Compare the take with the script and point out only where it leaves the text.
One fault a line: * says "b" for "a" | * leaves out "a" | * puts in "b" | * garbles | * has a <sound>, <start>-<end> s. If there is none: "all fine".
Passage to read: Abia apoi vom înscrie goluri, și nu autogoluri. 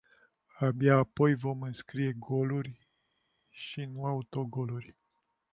all fine